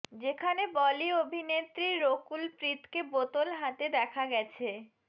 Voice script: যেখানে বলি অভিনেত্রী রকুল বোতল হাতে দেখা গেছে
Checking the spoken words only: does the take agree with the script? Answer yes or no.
no